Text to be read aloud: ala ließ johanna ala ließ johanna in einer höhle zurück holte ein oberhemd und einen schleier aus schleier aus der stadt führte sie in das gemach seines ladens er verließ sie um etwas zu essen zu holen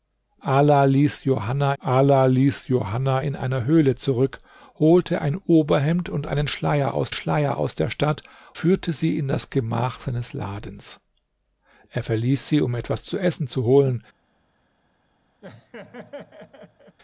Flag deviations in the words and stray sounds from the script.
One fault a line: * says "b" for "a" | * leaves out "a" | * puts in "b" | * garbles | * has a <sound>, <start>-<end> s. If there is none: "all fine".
* has a laugh, 15.4-17.0 s